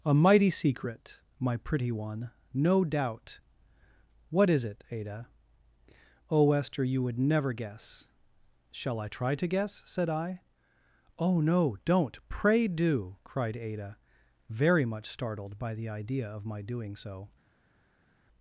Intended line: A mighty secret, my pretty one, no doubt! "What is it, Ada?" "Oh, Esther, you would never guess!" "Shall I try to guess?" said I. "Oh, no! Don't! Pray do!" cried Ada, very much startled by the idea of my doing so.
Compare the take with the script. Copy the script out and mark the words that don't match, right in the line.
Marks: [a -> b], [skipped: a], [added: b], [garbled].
A mighty secret, my pretty one, no doubt! "What is it, Ada?" "Oh, Esther, you would never guess!" "Shall I try to guess?" said I. "Oh, no! Don't! Pray do!" cried Ada, very much startled by the idea of my doing so.